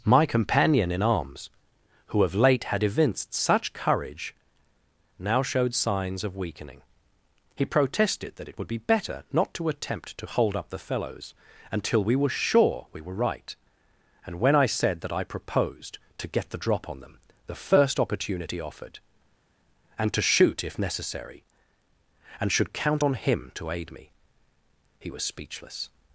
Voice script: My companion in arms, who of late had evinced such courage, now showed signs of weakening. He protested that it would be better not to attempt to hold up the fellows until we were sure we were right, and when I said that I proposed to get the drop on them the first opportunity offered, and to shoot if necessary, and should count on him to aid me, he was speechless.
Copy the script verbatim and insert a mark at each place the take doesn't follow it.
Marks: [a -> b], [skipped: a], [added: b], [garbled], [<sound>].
My companion in arms, who of late had evinced such courage, now showed signs of weakening. He protested that it would be better not to attempt to hold up the fellows until we were sure we were right, and when I said that I proposed to get the drop on them the first opportunity offered, and to shoot if necessary, and should count on him to aid me, he was speechless.